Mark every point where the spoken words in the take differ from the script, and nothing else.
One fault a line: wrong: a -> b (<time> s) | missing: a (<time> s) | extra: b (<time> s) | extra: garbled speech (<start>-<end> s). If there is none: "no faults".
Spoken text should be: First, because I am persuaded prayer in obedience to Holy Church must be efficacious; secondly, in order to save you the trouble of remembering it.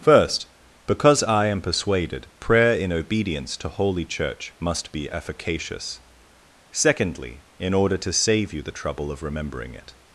no faults